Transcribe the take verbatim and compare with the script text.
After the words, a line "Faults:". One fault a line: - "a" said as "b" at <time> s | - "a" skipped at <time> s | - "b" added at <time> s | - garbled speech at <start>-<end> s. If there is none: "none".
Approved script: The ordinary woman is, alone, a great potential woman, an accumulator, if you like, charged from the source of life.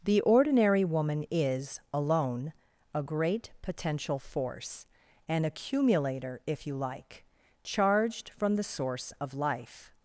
The ordinary woman is, alone, a great potential force, an accumulator, if you like, charged from the source of life.
Faults:
- "woman" said as "force" at 4.2 s